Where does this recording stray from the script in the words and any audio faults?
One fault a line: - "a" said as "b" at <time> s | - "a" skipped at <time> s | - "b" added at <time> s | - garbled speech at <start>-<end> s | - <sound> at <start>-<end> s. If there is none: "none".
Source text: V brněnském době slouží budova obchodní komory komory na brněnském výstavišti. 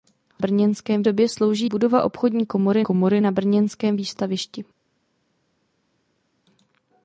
none